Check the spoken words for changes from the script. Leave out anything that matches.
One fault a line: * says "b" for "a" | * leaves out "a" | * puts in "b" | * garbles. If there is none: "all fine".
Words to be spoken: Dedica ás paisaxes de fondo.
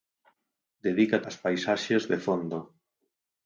all fine